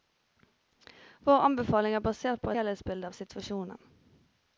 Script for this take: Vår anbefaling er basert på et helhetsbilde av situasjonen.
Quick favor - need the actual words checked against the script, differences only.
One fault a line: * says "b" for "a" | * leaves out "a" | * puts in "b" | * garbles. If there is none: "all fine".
* leaves out "et"